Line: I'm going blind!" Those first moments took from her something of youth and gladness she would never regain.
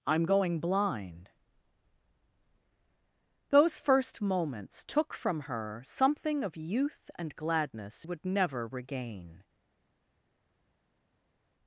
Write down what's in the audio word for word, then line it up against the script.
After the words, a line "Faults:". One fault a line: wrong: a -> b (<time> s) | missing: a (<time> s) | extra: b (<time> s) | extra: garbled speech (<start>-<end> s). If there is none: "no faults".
I'm going blind!" Those first moments took from her something of youth and gladness would never regain.
Faults:
missing: she (8.1 s)